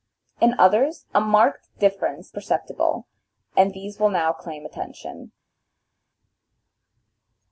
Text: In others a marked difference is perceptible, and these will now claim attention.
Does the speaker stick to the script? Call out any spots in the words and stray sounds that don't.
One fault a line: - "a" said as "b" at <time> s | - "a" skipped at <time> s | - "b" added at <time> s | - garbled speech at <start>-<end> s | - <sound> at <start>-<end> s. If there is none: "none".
- "is" skipped at 2.3 s